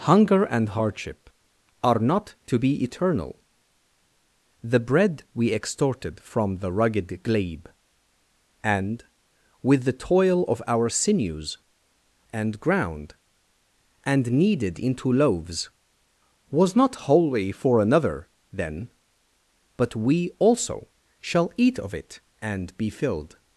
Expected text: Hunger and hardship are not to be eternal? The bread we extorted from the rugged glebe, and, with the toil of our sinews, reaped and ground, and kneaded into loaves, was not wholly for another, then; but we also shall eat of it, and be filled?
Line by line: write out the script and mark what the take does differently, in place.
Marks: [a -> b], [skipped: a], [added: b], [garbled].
Hunger and hardship are not to be eternal? The bread we extorted from the rugged glebe, and, with the toil of our sinews, [skipped: reaped] and ground, and kneaded into loaves, was not wholly for another, then; but we also shall eat of it, and be filled?